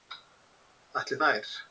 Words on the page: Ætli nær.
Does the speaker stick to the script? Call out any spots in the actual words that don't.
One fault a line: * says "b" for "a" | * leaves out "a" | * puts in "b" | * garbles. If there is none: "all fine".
all fine